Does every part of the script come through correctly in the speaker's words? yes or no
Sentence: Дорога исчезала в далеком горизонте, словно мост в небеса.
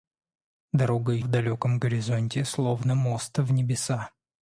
no